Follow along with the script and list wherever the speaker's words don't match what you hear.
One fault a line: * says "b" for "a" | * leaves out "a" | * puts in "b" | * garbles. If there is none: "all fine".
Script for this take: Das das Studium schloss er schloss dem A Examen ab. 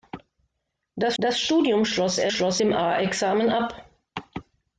all fine